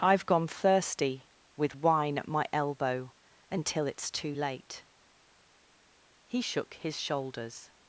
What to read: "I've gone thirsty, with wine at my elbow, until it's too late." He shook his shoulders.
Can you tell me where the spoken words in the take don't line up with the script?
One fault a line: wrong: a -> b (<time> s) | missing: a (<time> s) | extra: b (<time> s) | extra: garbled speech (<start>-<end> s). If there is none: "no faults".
no faults